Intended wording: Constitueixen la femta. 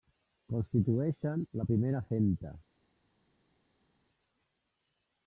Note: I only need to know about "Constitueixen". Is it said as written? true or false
true